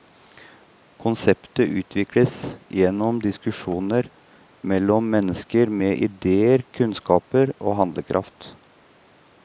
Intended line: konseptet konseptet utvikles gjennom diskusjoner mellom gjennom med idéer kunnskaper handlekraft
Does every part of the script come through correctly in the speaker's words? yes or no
no